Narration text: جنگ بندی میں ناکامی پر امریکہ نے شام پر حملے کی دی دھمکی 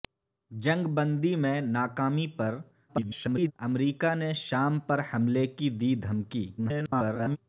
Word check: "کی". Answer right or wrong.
right